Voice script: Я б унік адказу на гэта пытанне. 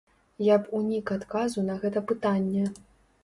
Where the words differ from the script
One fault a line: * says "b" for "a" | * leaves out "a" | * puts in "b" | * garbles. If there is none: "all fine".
all fine